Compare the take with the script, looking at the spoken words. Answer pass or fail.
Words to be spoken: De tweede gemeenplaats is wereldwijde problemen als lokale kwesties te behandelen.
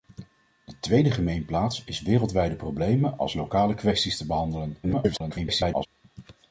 fail